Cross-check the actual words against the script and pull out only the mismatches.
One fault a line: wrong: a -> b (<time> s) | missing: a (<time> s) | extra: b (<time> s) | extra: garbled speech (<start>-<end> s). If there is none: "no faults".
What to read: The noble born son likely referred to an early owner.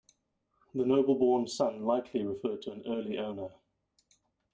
no faults